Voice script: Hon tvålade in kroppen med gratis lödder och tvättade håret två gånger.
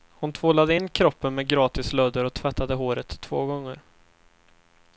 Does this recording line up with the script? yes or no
yes